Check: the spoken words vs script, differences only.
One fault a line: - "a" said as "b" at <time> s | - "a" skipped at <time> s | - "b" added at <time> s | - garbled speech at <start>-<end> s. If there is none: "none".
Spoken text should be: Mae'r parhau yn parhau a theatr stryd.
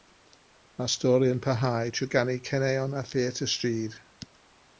- "parhau" said as "stori" at 0.9 s
- "trwy ganu caneuon" added at 2.0 s